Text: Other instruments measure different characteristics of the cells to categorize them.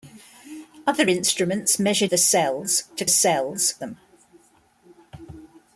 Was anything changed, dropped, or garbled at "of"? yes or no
yes